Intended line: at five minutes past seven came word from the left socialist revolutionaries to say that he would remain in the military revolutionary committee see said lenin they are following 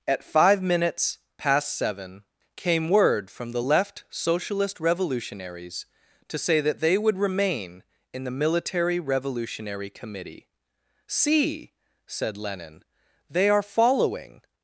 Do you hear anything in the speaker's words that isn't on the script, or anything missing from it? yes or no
yes